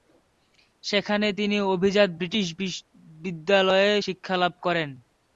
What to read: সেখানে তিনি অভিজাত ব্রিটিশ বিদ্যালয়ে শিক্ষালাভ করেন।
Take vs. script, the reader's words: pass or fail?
pass